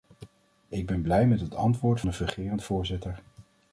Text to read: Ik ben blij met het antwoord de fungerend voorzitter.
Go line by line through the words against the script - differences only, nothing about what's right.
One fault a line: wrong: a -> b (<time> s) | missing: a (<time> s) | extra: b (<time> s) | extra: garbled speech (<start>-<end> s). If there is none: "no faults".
no faults